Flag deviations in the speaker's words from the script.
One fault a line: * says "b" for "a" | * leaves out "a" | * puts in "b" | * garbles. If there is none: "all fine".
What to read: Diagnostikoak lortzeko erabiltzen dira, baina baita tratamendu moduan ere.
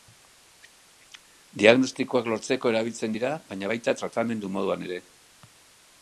all fine